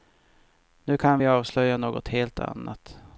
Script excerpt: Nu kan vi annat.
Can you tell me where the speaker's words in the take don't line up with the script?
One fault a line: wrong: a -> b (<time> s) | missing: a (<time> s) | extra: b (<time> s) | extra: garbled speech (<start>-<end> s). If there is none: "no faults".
extra: avslöja något helt (1.3 s)